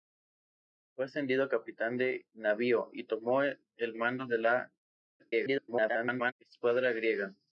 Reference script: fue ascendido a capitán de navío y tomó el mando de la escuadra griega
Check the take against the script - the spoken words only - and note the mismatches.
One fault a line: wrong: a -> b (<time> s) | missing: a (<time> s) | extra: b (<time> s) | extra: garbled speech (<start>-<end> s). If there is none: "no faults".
extra: garbled speech (5.2-6.3 s)